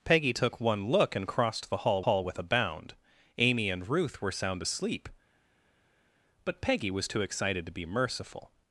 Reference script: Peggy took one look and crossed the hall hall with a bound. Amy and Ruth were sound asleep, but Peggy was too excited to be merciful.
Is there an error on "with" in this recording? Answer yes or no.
no